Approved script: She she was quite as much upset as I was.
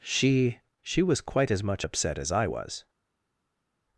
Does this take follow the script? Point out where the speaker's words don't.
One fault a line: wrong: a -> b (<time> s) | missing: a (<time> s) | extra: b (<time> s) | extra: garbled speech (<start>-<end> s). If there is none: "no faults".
no faults